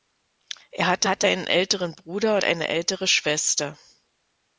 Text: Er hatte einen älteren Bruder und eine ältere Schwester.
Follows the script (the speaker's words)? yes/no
no